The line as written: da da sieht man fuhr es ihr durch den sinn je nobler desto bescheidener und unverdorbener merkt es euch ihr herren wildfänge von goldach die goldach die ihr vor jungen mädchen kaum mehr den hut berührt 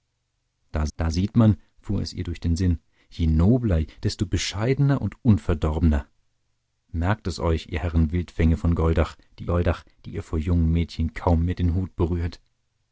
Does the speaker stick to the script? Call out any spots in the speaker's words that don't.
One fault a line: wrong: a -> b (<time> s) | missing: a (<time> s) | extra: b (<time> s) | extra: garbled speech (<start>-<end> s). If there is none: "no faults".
no faults